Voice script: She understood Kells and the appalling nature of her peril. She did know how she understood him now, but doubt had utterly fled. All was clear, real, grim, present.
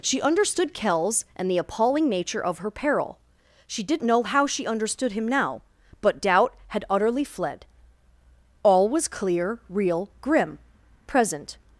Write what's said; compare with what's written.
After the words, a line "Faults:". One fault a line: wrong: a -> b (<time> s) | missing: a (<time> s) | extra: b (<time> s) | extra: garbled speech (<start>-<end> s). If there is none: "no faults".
She understood Kells and the appalling nature of her peril. She did know how she understood him now, but doubt had utterly fled. All was clear, real, grim, present.
Faults:
no faults